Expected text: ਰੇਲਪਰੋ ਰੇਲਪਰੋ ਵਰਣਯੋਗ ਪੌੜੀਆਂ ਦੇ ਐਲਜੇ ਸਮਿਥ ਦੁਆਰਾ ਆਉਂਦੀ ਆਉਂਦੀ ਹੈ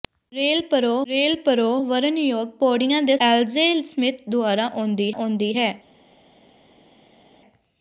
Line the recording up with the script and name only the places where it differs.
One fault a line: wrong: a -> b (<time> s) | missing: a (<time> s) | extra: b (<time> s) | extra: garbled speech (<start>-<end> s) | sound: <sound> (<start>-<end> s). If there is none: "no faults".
no faults